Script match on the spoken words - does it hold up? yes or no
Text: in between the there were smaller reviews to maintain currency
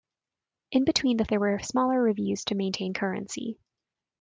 yes